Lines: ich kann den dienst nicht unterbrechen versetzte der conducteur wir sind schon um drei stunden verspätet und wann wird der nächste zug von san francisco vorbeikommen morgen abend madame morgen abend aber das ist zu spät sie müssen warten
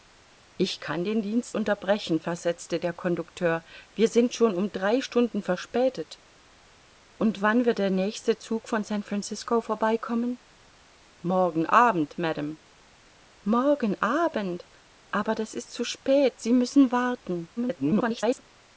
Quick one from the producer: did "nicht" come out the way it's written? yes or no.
no